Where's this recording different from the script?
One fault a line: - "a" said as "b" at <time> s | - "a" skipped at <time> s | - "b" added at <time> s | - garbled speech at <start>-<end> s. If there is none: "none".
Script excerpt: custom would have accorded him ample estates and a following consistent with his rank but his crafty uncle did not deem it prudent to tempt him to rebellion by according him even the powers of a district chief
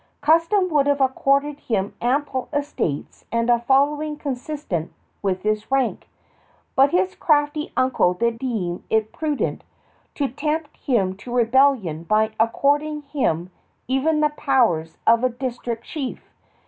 - "not" skipped at 8.4 s